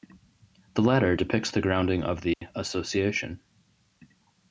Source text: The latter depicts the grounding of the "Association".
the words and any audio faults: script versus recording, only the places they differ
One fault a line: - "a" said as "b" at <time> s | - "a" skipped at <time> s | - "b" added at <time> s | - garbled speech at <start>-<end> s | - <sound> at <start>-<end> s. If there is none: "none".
- dropout at 2.3-2.4 s